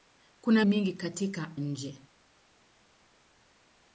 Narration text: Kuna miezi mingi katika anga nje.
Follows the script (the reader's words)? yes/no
no